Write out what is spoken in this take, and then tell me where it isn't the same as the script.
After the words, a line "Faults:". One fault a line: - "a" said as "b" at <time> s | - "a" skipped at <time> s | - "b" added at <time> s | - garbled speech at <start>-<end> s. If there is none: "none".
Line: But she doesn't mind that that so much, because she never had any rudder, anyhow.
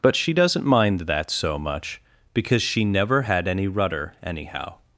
But she doesn't mind that so much, because she never had any rudder, anyhow.
Faults:
- "that" skipped at 1.3 s